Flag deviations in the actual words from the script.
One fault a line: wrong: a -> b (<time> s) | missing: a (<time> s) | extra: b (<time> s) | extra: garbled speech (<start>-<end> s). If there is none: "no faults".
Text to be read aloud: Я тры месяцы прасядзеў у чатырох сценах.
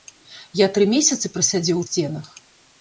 missing: чатырох (1.9 s)